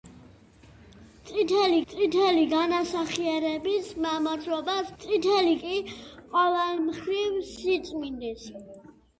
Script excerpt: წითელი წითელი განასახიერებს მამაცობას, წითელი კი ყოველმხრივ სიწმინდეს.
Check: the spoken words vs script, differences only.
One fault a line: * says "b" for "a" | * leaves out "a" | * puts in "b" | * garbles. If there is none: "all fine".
all fine